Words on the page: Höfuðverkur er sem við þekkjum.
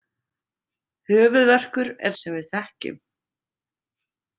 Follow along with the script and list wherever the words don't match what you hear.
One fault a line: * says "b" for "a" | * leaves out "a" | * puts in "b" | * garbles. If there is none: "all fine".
all fine